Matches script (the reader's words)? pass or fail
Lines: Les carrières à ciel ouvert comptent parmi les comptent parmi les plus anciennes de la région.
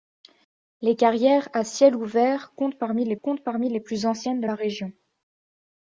pass